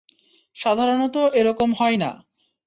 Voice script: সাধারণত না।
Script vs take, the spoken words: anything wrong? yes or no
yes